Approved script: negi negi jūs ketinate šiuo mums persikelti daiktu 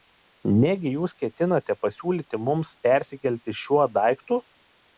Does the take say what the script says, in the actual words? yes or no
no